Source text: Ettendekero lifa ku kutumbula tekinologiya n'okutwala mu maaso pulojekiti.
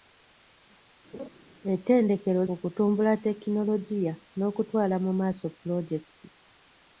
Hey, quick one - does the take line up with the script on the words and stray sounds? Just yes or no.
no